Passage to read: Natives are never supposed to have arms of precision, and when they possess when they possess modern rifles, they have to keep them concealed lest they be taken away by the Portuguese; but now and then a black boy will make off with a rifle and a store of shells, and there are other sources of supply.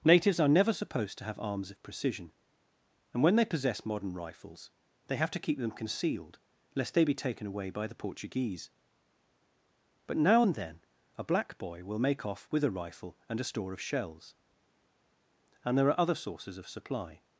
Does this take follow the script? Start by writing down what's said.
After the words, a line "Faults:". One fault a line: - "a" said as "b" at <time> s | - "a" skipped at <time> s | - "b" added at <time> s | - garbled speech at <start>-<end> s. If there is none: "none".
Natives are never supposed to have arms of precision, and when they possess modern rifles, they have to keep them concealed lest they be taken away by the Portuguese; but now and then a black boy will make off with a rifle and a store of shells, and there are other sources of supply.
Faults:
- "when they possess" skipped at 3.9 s